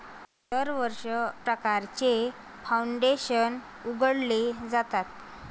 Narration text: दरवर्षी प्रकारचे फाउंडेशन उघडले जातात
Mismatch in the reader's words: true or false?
false